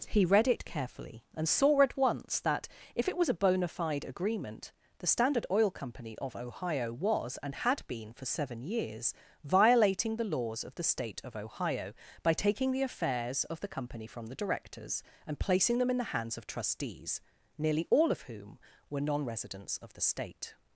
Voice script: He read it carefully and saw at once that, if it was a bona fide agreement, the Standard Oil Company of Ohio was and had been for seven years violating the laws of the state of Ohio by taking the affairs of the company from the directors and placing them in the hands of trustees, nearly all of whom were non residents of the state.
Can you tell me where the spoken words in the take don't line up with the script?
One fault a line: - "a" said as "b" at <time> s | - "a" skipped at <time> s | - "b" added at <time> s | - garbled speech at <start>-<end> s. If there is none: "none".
none